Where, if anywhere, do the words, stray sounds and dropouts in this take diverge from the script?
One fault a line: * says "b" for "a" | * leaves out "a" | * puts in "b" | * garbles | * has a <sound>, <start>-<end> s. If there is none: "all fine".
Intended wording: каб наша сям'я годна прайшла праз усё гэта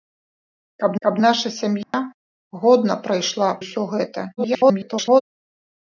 * puts in "каб"
* has a dropout, 1.8-1.9 s
* leaves out "праз"
* garbles